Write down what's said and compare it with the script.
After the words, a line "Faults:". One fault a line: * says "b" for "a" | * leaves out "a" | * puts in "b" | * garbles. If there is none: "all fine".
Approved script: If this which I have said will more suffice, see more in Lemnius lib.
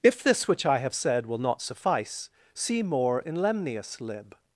If this which I have said will not suffice, see more in Lemnius lib.
Faults:
* says "not" for "more"